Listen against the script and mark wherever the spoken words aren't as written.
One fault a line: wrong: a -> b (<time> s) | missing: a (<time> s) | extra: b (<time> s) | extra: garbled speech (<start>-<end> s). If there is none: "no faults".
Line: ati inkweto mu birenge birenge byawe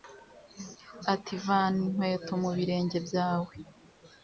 extra: vana (1.4 s)
missing: birenge (3.0 s)